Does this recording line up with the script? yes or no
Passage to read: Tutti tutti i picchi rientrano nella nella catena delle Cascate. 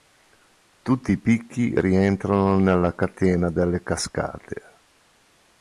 no